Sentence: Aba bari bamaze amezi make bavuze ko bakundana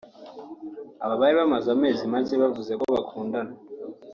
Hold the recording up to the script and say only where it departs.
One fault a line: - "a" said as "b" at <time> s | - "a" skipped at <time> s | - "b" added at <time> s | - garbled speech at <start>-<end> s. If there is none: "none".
none